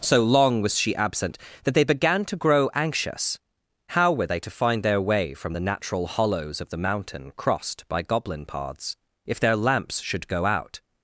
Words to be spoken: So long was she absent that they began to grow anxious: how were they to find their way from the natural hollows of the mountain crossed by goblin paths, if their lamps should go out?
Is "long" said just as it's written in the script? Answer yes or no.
yes